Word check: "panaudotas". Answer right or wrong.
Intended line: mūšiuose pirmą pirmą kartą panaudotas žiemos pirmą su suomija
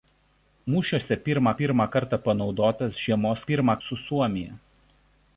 right